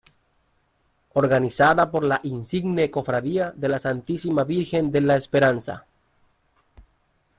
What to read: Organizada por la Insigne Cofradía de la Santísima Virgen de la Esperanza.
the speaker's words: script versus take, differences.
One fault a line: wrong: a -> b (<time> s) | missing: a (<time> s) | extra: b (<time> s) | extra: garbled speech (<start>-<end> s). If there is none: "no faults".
no faults